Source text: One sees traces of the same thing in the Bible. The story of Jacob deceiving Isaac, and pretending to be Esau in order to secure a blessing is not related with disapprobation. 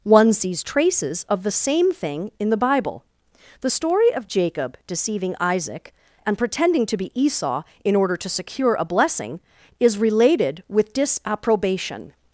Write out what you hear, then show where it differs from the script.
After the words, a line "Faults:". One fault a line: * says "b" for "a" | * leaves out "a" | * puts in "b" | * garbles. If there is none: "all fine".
One sees traces of the same thing in the Bible. The story of Jacob deceiving Isaac, and pretending to be Esau in order to secure a blessing is related with disapprobation.
Faults:
* leaves out "not"